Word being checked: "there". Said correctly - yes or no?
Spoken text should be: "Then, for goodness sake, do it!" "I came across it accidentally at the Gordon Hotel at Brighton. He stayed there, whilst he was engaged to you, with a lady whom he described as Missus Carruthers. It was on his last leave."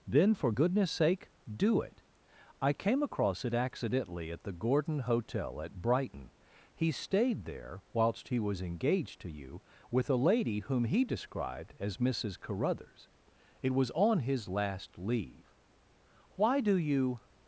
yes